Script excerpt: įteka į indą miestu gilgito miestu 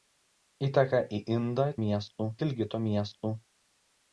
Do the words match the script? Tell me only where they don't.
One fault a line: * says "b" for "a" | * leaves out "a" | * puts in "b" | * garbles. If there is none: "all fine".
all fine